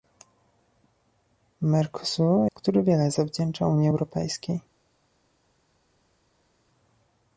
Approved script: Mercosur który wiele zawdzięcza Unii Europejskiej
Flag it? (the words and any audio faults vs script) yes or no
no